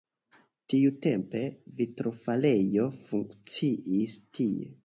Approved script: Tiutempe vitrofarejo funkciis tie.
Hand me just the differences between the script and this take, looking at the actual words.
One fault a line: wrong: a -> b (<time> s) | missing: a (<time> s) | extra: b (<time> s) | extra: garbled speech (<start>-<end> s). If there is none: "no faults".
no faults